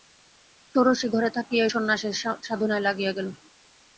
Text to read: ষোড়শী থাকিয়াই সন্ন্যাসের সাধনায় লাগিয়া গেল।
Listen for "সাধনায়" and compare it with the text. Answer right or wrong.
right